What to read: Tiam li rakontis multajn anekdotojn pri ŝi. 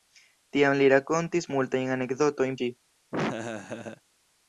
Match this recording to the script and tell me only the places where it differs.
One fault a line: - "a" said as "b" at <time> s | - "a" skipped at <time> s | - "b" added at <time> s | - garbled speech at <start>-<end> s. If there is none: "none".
- "pri" skipped at 2.6 s